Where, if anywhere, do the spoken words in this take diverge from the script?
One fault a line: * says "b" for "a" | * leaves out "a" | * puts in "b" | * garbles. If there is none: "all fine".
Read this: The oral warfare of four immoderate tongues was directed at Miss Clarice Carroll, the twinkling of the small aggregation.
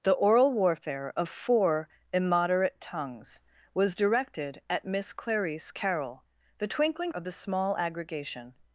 all fine